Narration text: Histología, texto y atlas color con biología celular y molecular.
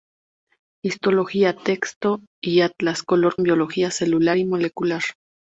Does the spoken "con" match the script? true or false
false